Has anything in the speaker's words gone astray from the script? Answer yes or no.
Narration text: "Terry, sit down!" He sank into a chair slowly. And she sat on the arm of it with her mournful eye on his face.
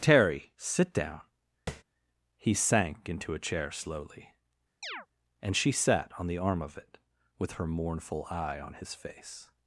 no